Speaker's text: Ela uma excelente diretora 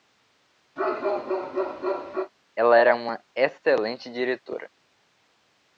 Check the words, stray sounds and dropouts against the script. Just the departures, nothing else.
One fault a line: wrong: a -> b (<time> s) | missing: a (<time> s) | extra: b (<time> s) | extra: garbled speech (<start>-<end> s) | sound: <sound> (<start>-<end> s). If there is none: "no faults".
sound: bark (0.8-2.3 s)
extra: era (2.8 s)